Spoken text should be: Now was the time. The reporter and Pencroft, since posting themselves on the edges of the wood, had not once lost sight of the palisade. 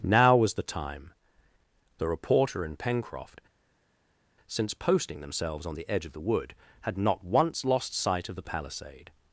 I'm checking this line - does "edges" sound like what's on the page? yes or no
no